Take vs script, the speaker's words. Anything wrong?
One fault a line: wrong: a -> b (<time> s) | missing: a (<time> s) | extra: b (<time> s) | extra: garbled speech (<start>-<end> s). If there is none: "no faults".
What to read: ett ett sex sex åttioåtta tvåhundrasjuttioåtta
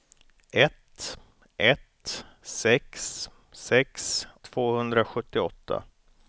missing: åttioåtta (4.3 s)